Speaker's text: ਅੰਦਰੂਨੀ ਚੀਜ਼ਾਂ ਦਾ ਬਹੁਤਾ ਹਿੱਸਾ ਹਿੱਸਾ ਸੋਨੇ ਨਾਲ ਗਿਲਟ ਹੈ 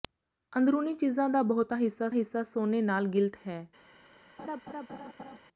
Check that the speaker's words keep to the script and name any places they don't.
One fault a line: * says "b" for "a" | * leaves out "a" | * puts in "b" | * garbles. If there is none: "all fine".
all fine